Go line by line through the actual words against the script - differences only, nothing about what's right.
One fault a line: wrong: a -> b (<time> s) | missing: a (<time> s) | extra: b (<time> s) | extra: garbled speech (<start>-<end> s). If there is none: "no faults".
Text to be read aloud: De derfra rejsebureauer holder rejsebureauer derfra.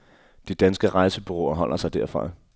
wrong: derfra -> danske (0.5 s)
wrong: rejsebureauer -> sig (1.8 s)